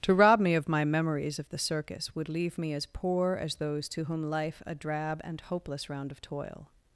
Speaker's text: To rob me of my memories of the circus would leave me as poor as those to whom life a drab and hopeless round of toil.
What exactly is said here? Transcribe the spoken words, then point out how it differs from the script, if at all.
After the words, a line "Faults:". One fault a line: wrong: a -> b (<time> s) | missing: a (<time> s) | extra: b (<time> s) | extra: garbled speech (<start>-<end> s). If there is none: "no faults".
To rob me of my memories of the circus would leave me as poor as those to whom life a drab and hopeless round of toil.
Faults:
no faults